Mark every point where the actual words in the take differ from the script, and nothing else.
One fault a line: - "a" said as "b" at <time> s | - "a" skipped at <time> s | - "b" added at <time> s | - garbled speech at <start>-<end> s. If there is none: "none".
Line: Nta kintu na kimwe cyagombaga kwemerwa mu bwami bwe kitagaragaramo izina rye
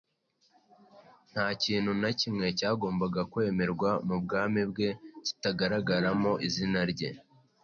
none